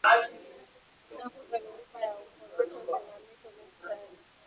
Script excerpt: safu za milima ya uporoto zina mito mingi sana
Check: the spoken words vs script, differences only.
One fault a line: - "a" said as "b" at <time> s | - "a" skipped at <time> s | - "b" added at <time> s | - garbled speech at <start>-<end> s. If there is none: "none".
none